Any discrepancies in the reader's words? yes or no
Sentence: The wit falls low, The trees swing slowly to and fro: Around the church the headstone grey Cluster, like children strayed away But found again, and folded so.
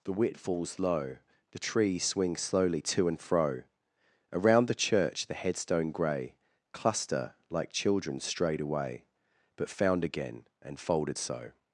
no